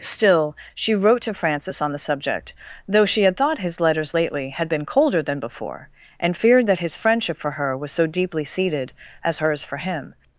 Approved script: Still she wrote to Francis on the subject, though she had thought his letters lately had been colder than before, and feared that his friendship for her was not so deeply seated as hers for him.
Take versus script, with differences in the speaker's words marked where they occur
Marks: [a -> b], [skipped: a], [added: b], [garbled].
Still she wrote to Francis on the subject, though she had thought his letters lately had been colder than before, and feared that his friendship for her was [skipped: not] so deeply seated as hers for him.